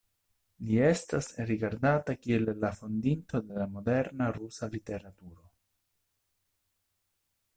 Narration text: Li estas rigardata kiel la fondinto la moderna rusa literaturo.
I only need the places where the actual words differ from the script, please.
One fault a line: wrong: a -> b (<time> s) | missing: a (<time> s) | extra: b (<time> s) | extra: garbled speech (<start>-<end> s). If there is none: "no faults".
no faults